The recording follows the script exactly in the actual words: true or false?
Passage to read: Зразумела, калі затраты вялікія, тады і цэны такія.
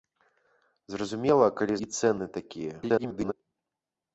false